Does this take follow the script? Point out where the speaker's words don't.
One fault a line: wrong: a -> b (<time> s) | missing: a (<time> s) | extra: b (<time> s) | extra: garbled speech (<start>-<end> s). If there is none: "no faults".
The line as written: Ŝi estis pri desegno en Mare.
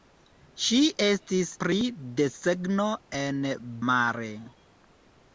no faults